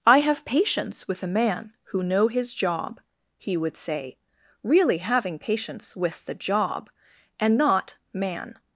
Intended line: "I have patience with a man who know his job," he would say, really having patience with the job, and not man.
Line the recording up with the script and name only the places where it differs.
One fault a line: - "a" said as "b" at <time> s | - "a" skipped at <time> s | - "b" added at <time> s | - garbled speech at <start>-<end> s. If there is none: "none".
none